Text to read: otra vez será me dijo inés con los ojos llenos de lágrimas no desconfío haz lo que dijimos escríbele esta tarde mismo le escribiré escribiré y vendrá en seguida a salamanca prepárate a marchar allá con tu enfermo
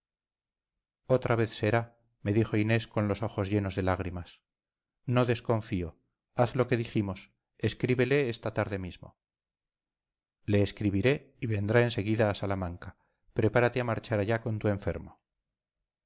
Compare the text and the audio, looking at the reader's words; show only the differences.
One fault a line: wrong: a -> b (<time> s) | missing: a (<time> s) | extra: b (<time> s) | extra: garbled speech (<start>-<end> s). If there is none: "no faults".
missing: escribiré (11.3 s)